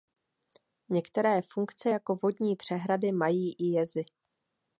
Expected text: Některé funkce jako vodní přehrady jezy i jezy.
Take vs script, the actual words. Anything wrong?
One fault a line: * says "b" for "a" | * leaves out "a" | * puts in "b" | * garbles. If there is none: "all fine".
* says "mají" for "jezy"